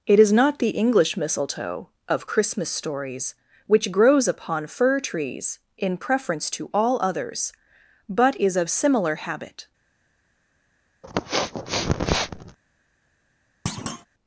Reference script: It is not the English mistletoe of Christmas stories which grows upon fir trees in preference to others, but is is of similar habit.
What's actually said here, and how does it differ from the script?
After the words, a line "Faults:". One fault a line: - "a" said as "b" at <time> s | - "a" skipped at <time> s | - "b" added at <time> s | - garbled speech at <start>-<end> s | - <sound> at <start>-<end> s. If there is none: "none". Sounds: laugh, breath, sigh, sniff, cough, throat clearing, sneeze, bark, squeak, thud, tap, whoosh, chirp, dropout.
It is not the English mistletoe of Christmas stories which grows upon fir trees in preference to all others, but is of similar habit.
Faults:
- "all" added at 6.7 s
- "is" skipped at 8.6 s
- sniff at 11.0-12.6 s
- thud at 13.7-14.1 s